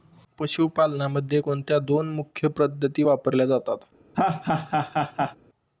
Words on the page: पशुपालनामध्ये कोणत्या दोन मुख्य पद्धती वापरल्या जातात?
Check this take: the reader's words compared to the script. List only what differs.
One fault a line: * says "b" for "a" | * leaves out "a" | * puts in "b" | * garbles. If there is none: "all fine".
all fine